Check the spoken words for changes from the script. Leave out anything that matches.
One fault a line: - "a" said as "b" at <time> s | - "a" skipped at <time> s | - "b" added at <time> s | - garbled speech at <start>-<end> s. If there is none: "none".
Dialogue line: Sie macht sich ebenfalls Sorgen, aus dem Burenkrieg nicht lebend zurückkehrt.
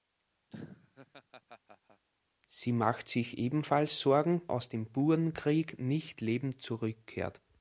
none